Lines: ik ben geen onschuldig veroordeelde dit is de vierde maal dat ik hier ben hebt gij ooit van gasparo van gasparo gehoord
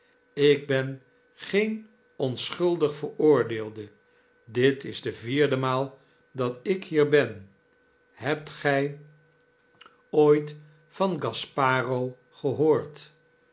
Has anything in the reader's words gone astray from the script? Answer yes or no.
yes